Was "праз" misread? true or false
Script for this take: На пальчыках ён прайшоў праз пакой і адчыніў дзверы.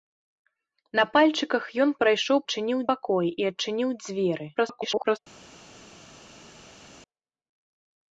true